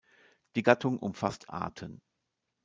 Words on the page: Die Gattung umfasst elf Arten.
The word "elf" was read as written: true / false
false